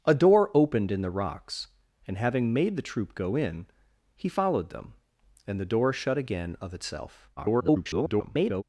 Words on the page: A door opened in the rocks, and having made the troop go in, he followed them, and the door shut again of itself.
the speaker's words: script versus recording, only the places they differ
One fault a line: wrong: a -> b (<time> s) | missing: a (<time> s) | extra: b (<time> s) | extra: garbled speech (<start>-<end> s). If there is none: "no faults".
extra: garbled speech (7.4-8.6 s)